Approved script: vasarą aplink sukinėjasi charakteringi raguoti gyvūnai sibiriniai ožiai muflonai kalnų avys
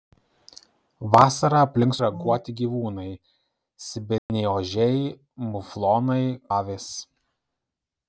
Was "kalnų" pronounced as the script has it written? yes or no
no